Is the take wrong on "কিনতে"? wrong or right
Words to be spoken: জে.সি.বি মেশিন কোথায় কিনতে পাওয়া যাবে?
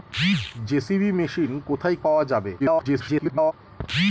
wrong